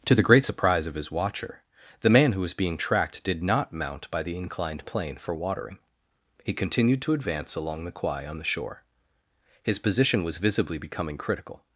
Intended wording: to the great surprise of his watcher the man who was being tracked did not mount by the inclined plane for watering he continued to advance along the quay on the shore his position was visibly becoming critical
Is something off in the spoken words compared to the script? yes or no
no